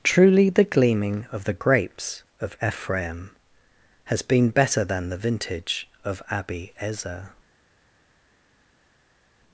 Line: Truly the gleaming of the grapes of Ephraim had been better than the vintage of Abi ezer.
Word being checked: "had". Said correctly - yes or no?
no